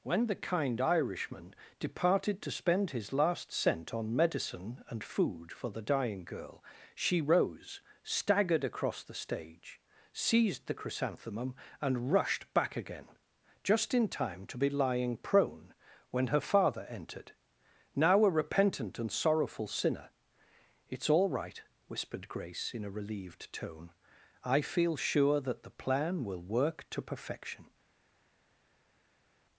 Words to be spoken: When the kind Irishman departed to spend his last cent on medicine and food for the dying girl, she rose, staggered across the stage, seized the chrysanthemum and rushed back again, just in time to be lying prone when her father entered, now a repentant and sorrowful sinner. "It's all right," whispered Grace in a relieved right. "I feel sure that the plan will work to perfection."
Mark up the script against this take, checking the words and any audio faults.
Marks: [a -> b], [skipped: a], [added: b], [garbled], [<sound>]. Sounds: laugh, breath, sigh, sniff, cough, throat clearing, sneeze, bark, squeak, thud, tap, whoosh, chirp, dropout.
When the kind Irishman departed to spend his last cent on medicine and food for the dying girl, she rose, staggered across the stage, seized the chrysanthemum and rushed back again, just in time to be lying prone when her father entered, now a repentant and sorrowful sinner. "It's all right," whispered Grace in a relieved [right. -> tone] "I feel sure that the plan will work to perfection."